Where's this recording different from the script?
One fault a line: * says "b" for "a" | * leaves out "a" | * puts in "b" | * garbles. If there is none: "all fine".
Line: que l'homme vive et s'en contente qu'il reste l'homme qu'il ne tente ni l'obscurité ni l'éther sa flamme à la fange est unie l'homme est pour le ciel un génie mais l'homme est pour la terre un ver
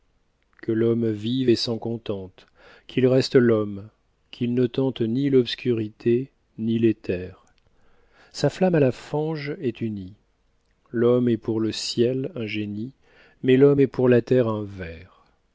all fine